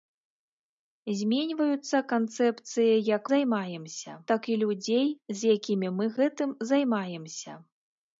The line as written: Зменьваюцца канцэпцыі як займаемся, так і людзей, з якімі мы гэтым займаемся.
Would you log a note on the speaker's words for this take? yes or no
no